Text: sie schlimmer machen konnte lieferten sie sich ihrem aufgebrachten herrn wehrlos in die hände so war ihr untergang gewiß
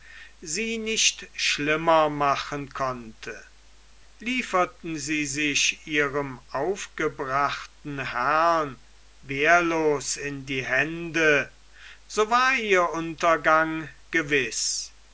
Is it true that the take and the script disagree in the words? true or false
true